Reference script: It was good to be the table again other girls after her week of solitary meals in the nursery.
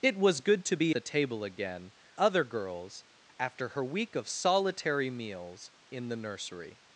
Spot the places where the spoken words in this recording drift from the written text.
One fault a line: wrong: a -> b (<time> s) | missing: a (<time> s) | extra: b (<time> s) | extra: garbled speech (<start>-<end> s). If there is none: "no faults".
no faults